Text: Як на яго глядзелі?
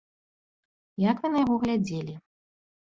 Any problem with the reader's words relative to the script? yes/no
yes